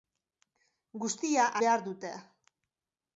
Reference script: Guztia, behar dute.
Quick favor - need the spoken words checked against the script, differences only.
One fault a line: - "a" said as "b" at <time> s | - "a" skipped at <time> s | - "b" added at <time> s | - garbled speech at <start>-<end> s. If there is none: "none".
none